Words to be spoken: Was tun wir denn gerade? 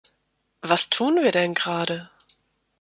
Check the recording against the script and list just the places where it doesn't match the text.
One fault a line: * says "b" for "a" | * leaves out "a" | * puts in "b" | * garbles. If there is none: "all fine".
all fine